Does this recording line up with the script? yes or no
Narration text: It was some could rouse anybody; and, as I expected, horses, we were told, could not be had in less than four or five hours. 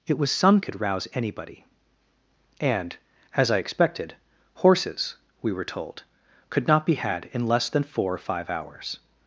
yes